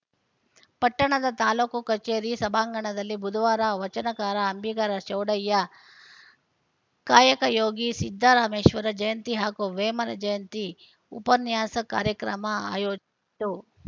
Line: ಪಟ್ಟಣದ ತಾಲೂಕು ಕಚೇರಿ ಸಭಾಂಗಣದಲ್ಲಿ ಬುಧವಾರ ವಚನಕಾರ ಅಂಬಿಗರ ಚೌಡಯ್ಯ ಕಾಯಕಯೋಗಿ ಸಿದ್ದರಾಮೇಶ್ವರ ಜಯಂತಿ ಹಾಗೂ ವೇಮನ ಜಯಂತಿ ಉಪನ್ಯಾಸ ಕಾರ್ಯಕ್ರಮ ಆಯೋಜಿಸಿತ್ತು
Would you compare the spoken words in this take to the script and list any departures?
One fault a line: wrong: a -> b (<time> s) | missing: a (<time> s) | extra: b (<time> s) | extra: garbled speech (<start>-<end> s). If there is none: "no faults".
no faults